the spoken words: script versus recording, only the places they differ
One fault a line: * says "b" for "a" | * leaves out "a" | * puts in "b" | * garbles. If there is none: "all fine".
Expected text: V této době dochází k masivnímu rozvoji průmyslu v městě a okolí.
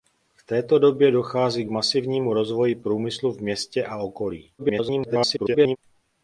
* garbles